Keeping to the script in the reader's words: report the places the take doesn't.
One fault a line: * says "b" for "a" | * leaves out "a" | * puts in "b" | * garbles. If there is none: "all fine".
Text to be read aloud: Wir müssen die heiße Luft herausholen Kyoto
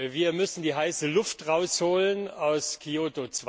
* puts in "aus"